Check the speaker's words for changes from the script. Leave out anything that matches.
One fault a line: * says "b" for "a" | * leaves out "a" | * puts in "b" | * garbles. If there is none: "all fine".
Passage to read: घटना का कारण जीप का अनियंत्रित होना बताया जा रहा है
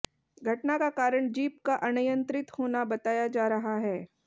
all fine